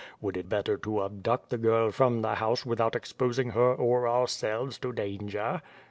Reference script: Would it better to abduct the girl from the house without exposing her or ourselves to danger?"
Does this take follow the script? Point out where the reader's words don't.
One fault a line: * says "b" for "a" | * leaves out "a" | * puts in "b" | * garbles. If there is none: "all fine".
all fine